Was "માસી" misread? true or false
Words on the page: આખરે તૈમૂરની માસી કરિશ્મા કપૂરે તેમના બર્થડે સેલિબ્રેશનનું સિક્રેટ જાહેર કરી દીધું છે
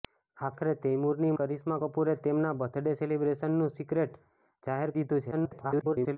true